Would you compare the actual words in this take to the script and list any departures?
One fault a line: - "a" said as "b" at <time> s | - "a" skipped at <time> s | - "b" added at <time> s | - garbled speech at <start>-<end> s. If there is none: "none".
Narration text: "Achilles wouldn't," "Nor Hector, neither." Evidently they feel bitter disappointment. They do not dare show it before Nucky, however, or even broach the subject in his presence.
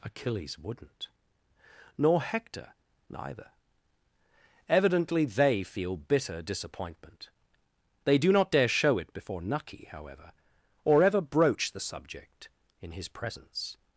- "even" said as "ever" at 11.0 s